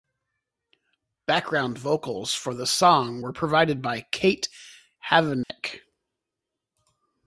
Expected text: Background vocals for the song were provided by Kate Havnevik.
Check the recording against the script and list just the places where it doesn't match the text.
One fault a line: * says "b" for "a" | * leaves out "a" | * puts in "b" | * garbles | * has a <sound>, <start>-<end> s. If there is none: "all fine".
* has a dropout, 5.4-5.5 s